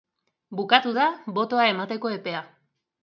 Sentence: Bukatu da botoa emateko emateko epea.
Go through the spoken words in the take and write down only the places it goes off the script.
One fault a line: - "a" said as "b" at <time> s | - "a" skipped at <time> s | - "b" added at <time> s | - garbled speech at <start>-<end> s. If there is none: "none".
- "emateko" skipped at 2.1 s